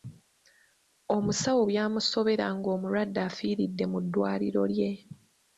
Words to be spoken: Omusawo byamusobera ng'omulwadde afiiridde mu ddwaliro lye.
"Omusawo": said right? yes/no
yes